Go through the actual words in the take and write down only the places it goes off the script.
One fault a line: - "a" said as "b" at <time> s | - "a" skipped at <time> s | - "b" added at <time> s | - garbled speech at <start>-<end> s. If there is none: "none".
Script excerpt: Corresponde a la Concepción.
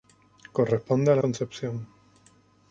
none